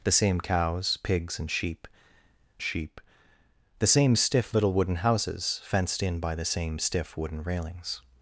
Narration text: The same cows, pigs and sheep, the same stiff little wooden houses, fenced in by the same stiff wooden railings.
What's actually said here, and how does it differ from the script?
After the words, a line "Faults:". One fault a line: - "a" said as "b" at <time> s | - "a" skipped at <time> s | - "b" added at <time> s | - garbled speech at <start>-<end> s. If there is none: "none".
The same cows, pigs and sheep sheep, the same stiff little wooden houses, fenced in by the same stiff wooden railings.
Faults:
- "sheep" added at 2.6 s